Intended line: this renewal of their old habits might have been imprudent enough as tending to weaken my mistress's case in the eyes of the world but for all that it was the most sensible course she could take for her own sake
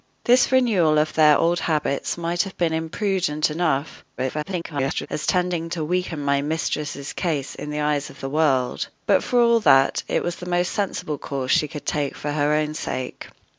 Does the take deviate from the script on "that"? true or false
false